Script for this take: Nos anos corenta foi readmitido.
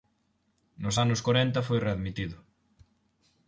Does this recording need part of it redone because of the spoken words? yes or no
no